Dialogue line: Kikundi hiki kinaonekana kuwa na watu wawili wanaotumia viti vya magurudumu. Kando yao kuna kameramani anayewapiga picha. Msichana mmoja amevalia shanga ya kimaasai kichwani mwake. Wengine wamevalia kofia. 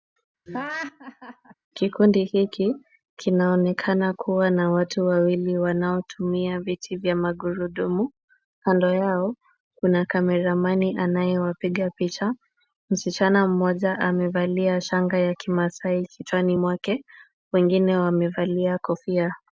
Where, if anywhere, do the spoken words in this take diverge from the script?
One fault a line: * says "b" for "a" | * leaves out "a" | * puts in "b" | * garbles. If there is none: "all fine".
all fine